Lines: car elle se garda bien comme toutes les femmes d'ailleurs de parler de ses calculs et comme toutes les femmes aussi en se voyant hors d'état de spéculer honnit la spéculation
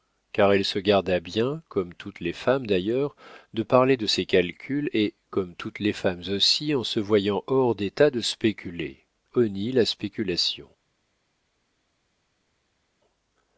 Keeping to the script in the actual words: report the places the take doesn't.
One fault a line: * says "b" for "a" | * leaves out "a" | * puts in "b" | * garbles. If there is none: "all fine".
all fine